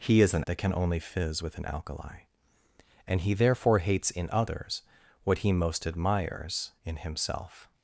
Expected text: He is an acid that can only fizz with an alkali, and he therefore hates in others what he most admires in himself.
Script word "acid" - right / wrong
wrong